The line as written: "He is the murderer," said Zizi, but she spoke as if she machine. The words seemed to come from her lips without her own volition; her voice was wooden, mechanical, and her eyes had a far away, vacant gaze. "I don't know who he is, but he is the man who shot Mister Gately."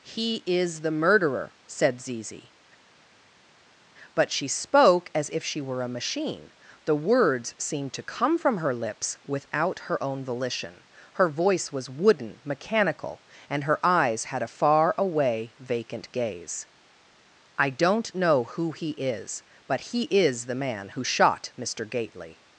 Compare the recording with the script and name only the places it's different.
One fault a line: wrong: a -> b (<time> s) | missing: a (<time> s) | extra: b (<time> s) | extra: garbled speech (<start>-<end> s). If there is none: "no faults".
extra: were a (5.6 s)